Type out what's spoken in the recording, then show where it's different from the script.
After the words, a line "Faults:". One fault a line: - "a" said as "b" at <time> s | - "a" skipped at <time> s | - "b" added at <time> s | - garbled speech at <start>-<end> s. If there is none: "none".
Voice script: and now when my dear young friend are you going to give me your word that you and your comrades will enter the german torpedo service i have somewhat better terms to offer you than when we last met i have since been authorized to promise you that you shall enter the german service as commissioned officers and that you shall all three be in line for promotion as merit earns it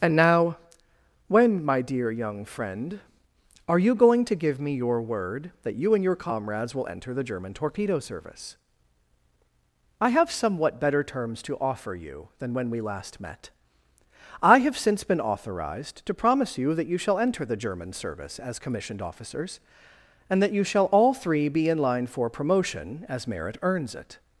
and now when my dear young friend are you going to give me your word that you and your comrades will enter the german torpedo service i have somewhat better terms to offer you than when we last met i have since been authorized to promise you that you shall enter the german service as commissioned officers and that you shall all three be in line for promotion as merit earns it
Faults:
none